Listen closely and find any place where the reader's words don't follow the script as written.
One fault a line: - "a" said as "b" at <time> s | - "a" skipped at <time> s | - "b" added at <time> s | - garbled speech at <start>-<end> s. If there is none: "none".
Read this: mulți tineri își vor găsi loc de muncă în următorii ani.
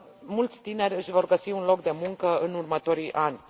- "un" added at 1.5 s